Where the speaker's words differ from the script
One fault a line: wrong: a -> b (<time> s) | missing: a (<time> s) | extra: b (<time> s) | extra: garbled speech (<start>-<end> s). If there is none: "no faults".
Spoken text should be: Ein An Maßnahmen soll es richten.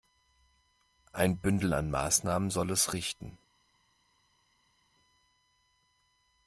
extra: Bündel (1.4 s)